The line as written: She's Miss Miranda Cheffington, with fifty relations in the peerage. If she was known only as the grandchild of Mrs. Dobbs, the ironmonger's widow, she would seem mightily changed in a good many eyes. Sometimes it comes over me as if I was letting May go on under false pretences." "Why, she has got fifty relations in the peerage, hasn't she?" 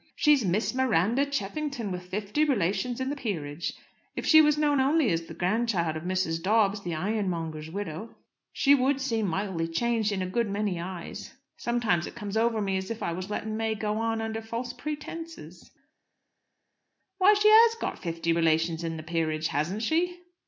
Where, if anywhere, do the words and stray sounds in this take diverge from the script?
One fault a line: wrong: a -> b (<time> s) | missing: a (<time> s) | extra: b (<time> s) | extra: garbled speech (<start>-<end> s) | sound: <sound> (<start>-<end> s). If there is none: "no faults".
no faults